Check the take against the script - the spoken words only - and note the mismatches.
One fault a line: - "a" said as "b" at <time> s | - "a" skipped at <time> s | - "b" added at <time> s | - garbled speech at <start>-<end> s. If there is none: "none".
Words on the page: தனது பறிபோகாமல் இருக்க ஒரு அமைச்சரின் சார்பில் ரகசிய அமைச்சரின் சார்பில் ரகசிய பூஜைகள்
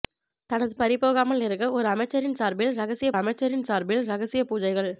none